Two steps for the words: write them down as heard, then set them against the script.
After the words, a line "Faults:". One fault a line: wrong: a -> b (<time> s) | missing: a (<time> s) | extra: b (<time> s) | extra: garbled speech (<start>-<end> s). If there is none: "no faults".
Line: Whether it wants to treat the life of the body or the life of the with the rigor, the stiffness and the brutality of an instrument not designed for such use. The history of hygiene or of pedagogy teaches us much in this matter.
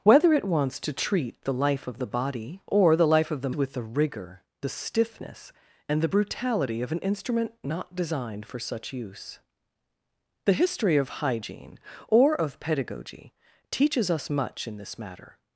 Whether it wants to treat the life of the body or the life of the with the rigor, the stiffness and the brutality of an instrument not designed for such use. The history of hygiene or of pedagogy teaches us much in this matter.
Faults:
no faults